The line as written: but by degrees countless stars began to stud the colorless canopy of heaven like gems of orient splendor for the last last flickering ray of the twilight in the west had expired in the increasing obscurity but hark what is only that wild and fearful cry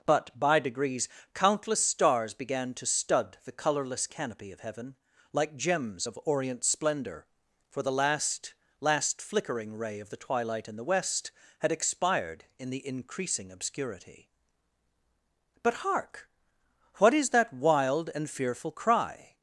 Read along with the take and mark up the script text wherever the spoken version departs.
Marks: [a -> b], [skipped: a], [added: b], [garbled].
but by degrees countless stars began to stud the colorless canopy of heaven like gems of orient splendor for the last last flickering ray of the twilight in the west had expired in the increasing obscurity but hark what is [skipped: only] that wild and fearful cry